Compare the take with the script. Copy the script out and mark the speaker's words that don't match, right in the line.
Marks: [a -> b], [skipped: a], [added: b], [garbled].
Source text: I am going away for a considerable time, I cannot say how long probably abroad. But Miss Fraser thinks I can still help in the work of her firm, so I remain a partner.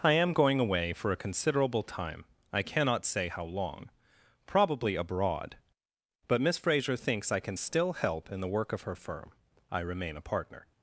I am going away for a considerable time, I cannot say how long probably abroad. But Miss Fraser thinks I can still help in the work of her firm, [skipped: so] I remain a partner.